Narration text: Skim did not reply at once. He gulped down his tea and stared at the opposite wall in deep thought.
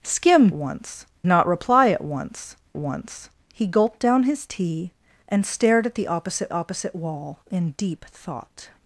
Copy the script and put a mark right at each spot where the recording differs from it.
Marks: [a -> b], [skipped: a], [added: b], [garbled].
Skim [did -> once] not reply at once. [added: once] He gulped down his tea and stared at the opposite [added: opposite] wall in deep thought.